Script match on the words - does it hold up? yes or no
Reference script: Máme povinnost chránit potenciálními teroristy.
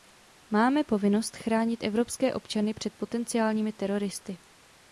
no